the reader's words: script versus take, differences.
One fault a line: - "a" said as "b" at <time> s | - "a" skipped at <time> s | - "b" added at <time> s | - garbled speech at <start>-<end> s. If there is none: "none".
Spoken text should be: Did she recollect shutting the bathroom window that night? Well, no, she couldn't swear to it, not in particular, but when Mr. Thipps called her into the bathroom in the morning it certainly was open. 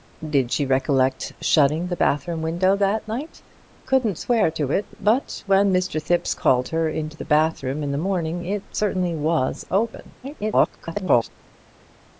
- "Well no she" skipped at 3.4 s
- "not in particular" skipped at 5.0 s
- garbled speech at 10.2-11.3 s